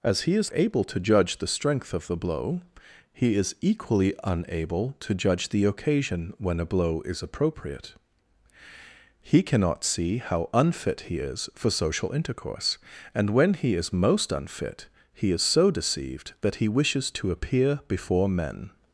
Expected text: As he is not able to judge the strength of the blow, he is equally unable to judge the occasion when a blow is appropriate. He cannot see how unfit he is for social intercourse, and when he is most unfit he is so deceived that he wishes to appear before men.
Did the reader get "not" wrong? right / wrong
wrong